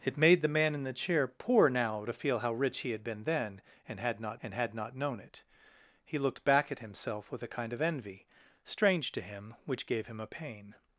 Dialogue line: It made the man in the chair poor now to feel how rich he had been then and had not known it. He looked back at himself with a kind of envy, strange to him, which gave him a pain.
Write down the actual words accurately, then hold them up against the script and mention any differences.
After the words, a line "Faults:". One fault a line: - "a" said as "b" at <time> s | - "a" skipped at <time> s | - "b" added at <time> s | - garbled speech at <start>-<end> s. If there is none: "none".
It made the man in the chair poor now to feel how rich he had been then and had not and had not known it. He looked back at himself with a kind of envy, strange to him, which gave him a pain.
Faults:
- "and had not" added at 4.4 s